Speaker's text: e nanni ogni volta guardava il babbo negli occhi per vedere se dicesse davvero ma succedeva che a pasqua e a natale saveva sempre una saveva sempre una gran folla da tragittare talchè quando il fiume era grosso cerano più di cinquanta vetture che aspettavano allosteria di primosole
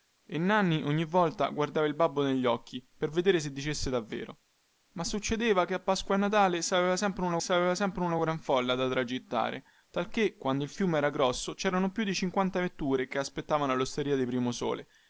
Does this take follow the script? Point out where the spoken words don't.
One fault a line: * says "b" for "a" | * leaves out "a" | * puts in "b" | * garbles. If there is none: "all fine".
all fine